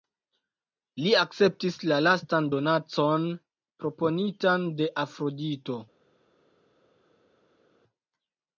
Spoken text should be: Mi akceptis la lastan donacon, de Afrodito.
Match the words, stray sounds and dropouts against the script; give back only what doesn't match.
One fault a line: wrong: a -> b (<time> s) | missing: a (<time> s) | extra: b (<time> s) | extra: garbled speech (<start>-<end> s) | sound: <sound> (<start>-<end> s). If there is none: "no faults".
wrong: Mi -> Li (1.0 s)
extra: proponitan (3.8 s)